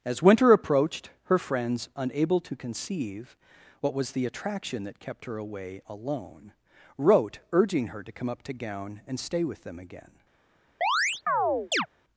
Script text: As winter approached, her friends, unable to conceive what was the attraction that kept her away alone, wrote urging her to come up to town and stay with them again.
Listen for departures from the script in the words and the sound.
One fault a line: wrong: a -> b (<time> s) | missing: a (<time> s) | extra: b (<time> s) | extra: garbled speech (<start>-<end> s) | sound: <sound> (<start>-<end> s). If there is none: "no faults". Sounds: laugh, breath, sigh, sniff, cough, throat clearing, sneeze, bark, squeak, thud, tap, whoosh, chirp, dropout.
wrong: town -> gown (8.5 s)
sound: chirp (10.8-11.9 s)